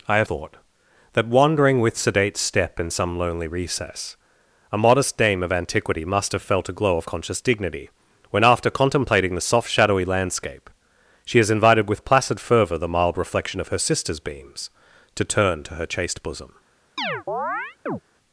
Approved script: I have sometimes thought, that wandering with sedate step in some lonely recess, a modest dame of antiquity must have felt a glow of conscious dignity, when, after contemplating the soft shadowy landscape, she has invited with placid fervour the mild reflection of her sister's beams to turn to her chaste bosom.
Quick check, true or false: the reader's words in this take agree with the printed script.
false